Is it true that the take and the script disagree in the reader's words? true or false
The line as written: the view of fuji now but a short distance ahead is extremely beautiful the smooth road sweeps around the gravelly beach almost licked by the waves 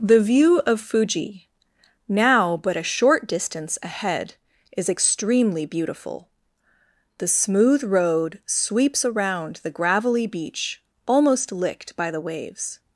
false